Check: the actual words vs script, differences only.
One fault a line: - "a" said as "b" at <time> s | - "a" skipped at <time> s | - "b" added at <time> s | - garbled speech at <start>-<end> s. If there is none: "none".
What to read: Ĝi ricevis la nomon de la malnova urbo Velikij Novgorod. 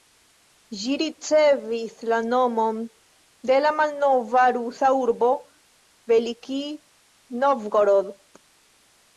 - "rusa" added at 4.6 s